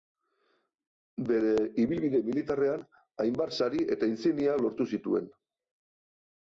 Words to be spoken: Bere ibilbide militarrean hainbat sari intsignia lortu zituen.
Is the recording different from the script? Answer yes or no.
yes